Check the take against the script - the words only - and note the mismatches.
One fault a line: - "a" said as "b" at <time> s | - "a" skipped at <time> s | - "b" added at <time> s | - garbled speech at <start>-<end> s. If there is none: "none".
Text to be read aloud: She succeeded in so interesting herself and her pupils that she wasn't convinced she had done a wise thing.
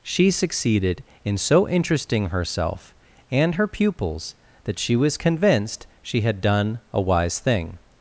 - "wasn't" said as "was" at 5.0 s